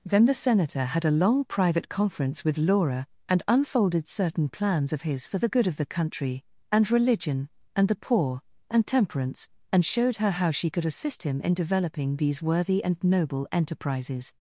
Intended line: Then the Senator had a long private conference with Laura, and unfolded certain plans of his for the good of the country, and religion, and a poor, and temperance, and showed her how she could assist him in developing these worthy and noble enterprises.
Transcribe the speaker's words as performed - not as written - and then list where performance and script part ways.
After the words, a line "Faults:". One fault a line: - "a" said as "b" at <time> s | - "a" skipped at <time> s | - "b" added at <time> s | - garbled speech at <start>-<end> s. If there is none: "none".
Then the Senator had a long private conference with Laura, and unfolded certain plans of his for the good of the country, and religion, and the poor, and temperance, and showed her how she could assist him in developing these worthy and noble enterprises.
Faults:
- "a" said as "the" at 7.9 s